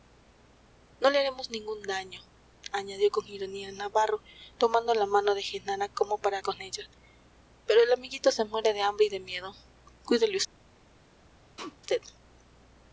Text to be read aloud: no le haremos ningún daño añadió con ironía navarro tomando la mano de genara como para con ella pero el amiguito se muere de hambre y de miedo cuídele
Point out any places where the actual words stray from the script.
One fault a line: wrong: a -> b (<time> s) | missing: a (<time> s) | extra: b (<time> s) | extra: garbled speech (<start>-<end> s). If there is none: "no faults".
no faults